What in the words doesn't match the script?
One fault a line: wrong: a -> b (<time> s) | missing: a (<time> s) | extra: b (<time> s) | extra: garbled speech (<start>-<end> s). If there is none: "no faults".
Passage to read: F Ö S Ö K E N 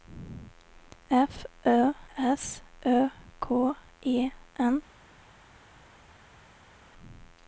no faults